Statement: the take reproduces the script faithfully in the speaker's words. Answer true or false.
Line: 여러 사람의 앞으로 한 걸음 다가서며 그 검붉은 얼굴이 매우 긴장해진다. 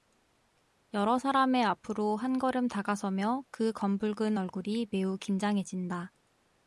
true